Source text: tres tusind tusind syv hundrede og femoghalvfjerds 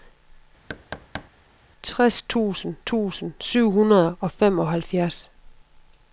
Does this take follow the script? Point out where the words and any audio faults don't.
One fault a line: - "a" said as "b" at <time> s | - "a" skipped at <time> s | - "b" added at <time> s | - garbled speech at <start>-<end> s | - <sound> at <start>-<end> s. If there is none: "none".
- thud at 0.7-1.3 s